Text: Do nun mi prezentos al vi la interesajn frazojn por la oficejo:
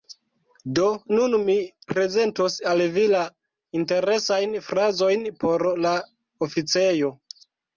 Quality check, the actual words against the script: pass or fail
pass